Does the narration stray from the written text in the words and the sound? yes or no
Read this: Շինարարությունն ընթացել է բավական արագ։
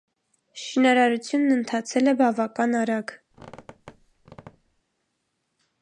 yes